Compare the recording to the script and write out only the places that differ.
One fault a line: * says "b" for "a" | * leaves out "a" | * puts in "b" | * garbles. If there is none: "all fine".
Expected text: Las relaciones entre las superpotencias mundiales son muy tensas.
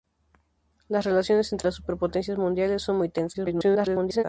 * garbles